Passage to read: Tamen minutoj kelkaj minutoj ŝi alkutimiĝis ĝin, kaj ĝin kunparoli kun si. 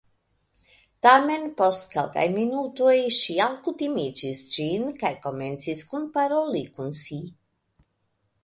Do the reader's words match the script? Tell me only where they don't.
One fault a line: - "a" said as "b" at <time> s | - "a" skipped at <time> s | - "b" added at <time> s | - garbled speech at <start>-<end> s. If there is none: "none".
- "minutoj" said as "post" at 1.6 s
- "ĝin" said as "komencis" at 5.3 s